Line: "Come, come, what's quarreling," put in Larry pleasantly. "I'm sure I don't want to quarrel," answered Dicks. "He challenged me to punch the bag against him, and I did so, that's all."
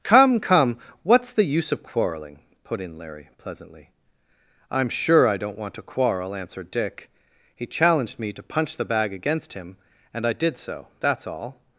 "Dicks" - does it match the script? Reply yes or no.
no